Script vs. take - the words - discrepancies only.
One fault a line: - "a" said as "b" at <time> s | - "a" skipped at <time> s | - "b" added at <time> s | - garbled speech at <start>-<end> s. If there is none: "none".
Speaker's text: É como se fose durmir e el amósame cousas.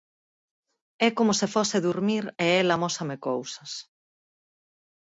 none